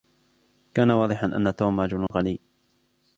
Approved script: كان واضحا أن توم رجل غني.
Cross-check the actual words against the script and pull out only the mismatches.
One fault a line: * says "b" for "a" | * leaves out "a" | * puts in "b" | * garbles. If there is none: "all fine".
all fine